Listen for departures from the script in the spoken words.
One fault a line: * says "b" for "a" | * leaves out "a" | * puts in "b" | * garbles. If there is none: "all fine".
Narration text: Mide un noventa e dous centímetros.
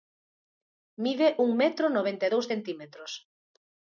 * puts in "metro"